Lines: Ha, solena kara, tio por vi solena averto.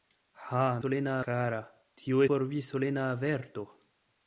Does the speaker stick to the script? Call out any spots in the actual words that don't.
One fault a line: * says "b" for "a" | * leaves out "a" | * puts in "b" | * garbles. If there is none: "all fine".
all fine